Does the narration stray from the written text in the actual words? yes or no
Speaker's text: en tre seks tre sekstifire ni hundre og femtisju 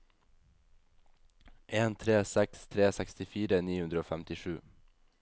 no